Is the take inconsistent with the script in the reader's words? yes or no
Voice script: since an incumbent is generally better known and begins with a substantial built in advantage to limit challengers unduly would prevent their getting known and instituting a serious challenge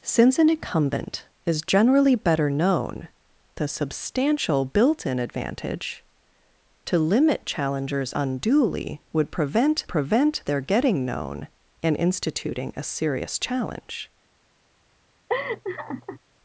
yes